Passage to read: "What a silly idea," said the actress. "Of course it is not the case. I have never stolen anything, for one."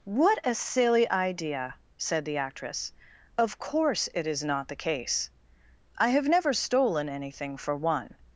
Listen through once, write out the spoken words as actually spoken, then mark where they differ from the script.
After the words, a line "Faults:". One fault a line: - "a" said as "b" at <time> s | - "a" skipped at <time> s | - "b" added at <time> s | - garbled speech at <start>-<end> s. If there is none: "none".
"What a silly idea," said the actress. "Of course it is not the case. I have never stolen anything, for one."
Faults:
none